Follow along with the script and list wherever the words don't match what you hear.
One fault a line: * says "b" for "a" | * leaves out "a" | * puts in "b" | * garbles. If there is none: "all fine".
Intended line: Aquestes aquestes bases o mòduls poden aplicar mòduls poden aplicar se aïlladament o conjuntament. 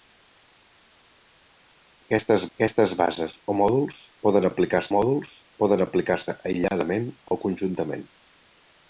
all fine